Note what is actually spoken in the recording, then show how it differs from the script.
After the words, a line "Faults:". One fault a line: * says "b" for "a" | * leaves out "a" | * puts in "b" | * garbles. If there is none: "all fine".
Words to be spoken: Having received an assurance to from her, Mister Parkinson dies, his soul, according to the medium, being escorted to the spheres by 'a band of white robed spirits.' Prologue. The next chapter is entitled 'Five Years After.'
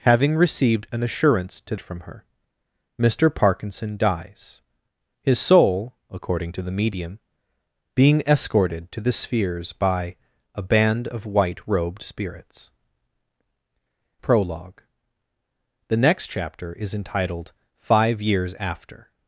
Having received an assurance to from her, Mister Parkinson dies, his soul, according to the medium, being escorted to the spheres by 'a band of white robed spirits.' Prologue. The next chapter is entitled 'Five Years After.'
Faults:
all fine